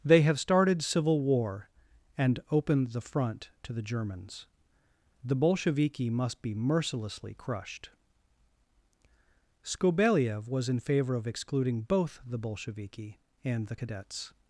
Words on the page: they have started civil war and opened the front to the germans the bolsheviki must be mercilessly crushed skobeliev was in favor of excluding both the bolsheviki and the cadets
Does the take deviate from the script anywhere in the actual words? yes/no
no